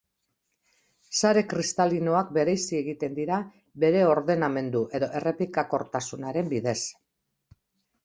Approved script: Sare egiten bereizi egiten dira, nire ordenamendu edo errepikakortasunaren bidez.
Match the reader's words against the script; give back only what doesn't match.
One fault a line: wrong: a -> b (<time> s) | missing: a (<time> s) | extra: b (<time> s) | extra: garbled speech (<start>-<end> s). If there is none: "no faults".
wrong: egiten -> kristalinoak (1.5 s)
wrong: nire -> bere (3.9 s)